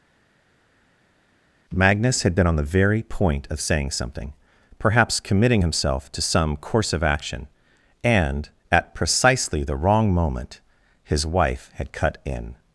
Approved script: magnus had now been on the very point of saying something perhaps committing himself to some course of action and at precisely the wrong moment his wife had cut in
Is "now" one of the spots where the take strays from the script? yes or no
yes